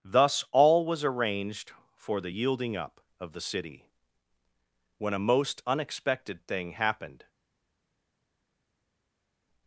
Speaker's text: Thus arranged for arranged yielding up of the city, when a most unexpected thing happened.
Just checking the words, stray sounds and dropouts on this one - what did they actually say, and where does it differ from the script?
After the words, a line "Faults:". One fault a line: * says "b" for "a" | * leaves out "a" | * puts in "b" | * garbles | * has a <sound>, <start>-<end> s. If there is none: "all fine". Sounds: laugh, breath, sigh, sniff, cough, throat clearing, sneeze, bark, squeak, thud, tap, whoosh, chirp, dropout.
Thus all was arranged for the yielding up of the city, when a most unexpected thing happened.
Faults:
* puts in "all was"
* says "the" for "arranged"